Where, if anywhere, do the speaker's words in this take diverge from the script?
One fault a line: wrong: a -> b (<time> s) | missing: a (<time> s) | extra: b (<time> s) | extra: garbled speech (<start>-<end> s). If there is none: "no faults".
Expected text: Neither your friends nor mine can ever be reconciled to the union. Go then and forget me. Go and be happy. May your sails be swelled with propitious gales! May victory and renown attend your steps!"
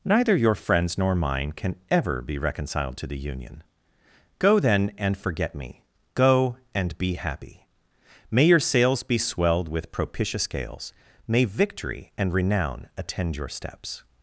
no faults